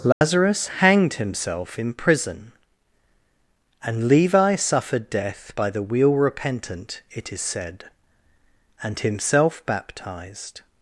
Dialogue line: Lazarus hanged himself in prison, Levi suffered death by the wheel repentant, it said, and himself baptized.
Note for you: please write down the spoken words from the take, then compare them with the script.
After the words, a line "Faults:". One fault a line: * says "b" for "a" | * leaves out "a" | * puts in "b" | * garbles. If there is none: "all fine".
Lazarus hanged himself in prison, and Levi suffered death by the wheel repentant, it is said, and himself baptized.
Faults:
* puts in "and"
* puts in "is"